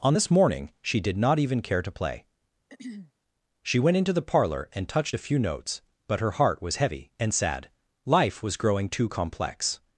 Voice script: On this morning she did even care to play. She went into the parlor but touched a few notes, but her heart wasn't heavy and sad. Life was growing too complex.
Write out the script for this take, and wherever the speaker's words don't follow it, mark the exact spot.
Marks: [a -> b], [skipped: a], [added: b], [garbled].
On this morning she did [added: not] even care to play. She went into the parlor [but -> and] touched a few notes, but her heart [wasn't -> was] heavy and sad. Life was growing too complex.